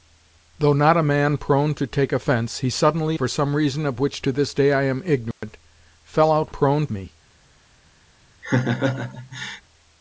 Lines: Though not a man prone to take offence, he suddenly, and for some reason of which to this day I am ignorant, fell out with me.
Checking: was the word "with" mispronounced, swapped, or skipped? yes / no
yes